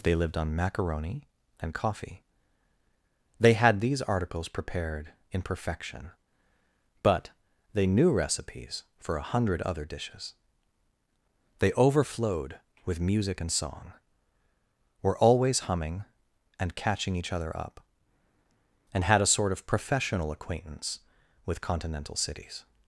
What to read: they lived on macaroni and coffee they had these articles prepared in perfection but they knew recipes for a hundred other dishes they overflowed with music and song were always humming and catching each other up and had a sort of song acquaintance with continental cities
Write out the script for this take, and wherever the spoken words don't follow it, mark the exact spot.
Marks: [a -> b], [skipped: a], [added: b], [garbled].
they lived on macaroni and coffee they had these articles prepared in perfection but they knew recipes for a hundred other dishes they overflowed with music and song were always humming and catching each other up and had a sort of [song -> professional] acquaintance with continental cities